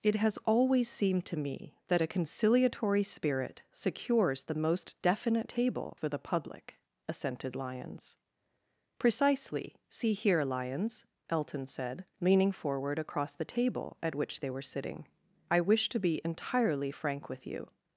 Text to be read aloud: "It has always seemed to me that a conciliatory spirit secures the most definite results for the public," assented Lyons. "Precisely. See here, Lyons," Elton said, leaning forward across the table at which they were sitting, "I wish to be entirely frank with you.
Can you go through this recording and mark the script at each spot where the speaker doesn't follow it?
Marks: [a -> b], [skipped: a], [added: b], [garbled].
"It has always seemed to me that a conciliatory spirit secures the most definite [results -> table] for the public," assented Lyons. "Precisely. See here, Lyons," Elton said, leaning forward across the table at which they were sitting, "I wish to be entirely frank with you.